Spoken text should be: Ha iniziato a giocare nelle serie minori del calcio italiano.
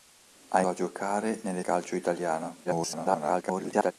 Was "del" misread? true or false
true